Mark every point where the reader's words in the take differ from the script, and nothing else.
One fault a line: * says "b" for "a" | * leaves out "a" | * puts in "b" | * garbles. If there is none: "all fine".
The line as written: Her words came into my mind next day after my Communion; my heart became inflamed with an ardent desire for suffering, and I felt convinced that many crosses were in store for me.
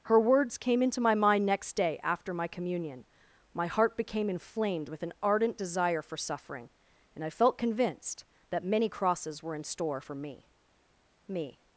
* puts in "me"